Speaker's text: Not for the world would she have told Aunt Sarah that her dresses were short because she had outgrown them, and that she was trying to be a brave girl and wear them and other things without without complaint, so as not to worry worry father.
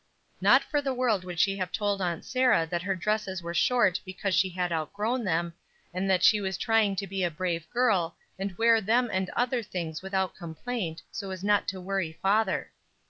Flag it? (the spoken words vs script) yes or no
yes